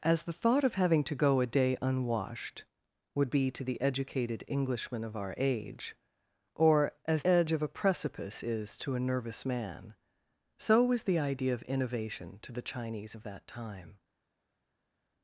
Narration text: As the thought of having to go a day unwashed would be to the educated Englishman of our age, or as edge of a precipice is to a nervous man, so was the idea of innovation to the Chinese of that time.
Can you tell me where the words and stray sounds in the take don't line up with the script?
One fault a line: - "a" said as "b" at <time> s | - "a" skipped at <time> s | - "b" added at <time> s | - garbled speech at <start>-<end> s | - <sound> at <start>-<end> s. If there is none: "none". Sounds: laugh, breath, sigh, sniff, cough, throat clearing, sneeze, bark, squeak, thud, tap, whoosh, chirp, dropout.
none